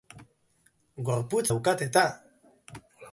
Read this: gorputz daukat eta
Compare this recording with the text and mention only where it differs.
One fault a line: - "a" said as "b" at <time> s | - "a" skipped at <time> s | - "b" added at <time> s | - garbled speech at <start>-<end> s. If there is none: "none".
none